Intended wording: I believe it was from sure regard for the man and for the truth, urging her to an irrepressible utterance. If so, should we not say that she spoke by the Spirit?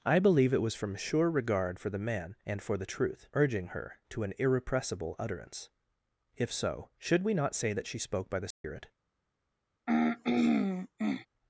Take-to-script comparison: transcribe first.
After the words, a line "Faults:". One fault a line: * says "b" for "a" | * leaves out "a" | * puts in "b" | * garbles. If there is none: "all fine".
I believe it was from sure regard for the man and for the truth, urging her to an irrepressible utterance. If so, should we not say that she spoke by the Spirit?
Faults:
all fine